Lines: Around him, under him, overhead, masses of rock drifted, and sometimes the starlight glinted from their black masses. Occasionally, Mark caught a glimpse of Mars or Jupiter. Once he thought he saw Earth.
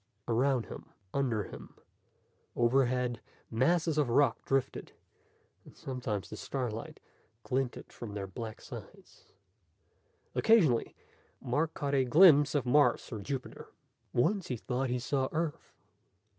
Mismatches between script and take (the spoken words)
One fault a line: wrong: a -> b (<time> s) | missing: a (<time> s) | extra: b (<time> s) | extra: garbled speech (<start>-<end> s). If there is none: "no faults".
wrong: masses -> sides (8.6 s)